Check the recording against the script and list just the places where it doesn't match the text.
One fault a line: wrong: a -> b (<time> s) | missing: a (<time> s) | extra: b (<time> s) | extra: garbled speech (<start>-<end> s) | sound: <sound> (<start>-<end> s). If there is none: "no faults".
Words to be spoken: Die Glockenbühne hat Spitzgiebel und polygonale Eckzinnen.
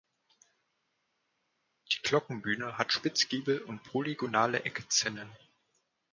no faults